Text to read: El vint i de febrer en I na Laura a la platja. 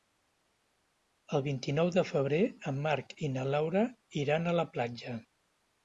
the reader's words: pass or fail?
fail